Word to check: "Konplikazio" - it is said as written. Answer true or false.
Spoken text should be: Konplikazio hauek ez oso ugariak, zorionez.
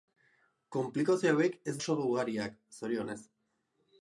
true